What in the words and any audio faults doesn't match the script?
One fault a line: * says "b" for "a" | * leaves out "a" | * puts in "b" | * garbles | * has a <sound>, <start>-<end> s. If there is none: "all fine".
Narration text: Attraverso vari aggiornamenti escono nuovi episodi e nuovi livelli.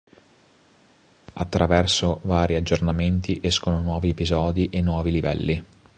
all fine